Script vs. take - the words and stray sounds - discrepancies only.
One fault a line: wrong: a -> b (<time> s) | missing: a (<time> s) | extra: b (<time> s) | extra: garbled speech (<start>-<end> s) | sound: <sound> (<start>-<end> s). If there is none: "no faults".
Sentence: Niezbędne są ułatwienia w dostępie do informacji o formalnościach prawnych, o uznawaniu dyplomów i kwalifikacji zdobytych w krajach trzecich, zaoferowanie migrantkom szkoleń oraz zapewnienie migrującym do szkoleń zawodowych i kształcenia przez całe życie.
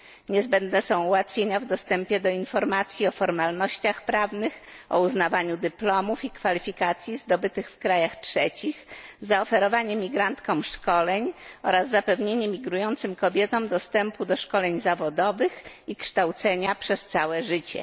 extra: kobietom dostępu (13.2 s)